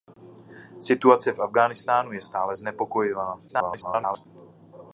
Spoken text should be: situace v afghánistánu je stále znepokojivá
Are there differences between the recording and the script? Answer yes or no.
yes